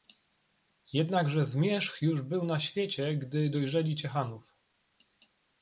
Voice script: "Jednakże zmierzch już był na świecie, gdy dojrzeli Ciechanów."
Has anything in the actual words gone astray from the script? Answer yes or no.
no